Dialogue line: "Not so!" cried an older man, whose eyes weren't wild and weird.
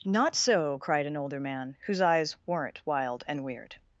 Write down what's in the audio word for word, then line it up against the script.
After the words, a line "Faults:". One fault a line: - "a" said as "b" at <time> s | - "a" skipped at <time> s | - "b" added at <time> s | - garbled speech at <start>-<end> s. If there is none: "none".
"Not so!" cried an older man, whose eyes weren't wild and weird.
Faults:
none